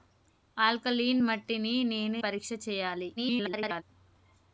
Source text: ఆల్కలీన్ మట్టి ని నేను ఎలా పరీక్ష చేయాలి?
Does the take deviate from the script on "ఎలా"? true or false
true